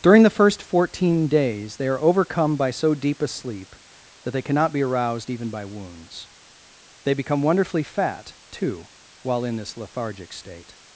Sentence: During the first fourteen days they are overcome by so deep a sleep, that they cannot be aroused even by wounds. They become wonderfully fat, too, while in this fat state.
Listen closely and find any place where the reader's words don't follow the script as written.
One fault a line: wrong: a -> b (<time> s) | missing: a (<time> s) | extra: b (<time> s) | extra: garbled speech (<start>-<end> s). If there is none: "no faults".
wrong: fat -> lethargic (9.8 s)